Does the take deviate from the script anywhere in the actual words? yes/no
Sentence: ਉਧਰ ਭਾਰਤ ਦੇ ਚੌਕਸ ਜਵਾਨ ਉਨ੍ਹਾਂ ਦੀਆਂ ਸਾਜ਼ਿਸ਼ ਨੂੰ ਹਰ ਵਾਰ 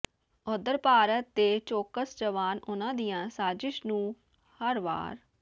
no